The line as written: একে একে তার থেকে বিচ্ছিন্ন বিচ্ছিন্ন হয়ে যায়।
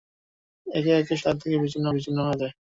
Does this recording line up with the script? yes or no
yes